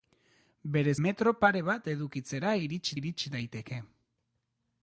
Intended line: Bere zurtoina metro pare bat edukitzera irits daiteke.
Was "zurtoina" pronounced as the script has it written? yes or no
no